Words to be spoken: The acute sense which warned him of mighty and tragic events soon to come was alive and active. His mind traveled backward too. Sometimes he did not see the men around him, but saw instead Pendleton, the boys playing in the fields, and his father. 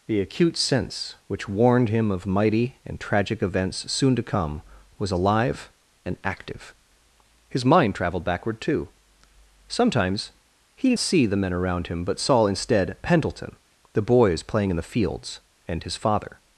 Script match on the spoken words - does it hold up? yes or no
no